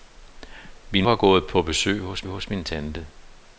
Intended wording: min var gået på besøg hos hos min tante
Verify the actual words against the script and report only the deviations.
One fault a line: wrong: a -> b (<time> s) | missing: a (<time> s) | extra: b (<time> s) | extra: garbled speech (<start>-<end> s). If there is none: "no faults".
no faults